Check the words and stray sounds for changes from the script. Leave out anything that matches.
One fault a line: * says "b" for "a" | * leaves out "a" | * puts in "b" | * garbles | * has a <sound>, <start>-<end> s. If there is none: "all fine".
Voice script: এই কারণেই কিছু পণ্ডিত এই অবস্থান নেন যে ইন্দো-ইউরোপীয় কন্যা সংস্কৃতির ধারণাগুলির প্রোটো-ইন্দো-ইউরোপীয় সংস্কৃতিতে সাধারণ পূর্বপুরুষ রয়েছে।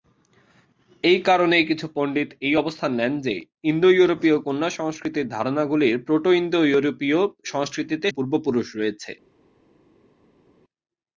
* leaves out "সাধারণ"